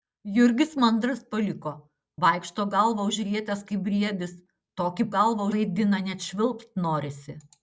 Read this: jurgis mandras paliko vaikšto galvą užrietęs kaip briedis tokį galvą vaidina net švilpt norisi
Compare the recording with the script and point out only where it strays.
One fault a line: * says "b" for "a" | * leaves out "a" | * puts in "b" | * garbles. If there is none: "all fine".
all fine